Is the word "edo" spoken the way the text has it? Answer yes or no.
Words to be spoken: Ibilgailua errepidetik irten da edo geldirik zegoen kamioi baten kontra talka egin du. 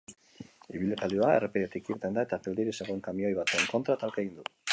no